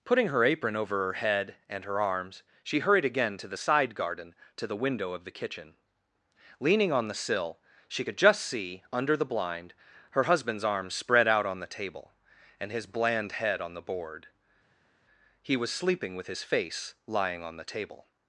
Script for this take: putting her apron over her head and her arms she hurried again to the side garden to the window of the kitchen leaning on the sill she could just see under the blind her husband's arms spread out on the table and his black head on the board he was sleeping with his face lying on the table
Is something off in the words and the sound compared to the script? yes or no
yes